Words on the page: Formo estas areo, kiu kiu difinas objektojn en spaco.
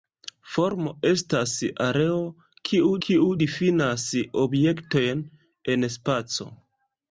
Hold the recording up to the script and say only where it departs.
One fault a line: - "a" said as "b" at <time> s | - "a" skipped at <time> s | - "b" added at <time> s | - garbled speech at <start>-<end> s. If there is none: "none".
none